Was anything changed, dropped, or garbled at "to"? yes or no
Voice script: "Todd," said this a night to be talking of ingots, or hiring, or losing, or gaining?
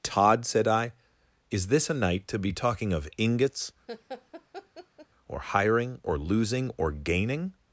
no